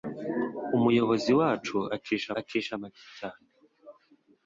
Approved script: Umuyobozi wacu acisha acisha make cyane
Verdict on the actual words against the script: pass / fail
pass